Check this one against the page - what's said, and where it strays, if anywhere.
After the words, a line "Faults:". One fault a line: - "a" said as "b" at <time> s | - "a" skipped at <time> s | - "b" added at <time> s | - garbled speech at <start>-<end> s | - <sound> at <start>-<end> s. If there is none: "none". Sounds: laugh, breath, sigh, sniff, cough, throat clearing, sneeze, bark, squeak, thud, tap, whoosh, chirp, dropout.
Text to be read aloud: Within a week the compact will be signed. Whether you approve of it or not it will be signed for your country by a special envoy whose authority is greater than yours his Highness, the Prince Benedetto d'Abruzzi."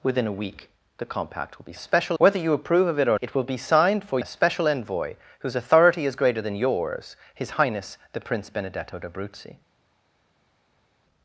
Within a week the compact will be special. Whether you approve of it or it will be signed for a special envoy whose authority is greater than yours his Highness, the Prince Benedetto d'Abruzzi."
Faults:
- "signed" said as "special" at 1.8 s
- "not" skipped at 3.2 s
- "your country by" skipped at 4.2 s